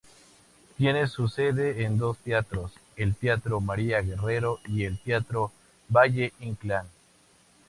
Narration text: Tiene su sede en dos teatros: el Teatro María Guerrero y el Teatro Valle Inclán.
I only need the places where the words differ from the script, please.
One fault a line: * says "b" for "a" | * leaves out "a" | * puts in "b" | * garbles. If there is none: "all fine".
all fine